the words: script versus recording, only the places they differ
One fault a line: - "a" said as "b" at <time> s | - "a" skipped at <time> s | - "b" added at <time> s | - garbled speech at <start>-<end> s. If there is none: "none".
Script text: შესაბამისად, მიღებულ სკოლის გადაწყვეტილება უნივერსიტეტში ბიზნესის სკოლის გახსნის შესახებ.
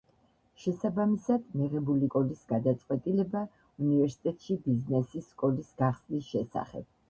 none